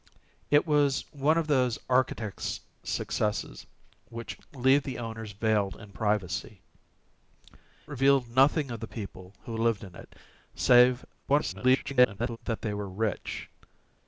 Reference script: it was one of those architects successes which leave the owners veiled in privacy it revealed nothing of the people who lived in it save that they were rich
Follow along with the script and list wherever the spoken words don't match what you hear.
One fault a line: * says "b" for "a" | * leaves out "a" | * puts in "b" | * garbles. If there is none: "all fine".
* leaves out "it"
* garbles